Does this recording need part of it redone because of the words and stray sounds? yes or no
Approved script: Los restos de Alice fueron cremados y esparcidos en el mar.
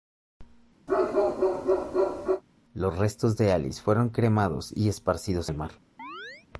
yes